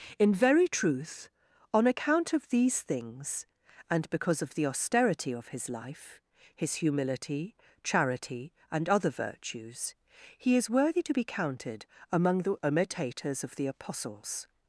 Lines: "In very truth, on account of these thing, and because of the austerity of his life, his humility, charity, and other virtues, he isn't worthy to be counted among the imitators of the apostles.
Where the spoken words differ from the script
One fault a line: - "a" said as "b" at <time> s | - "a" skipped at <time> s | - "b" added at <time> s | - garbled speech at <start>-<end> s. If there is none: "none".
- "thing" said as "things" at 2.8 s
- "isn't" said as "is" at 10.6 s